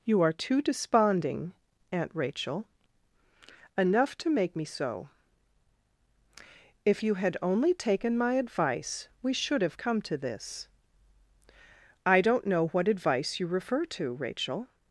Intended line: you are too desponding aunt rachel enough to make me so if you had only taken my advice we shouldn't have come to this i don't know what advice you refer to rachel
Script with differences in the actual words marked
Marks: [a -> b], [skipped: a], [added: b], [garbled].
you are too desponding aunt rachel enough to make me so if you had only taken my advice we [shouldn't -> should] have come to this i don't know what advice you refer to rachel